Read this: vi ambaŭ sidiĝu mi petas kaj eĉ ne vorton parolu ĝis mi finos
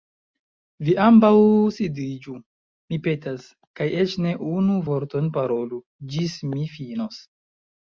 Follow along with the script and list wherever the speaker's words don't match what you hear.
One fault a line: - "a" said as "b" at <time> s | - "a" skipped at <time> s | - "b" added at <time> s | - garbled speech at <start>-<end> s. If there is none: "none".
- "unu" added at 4.6 s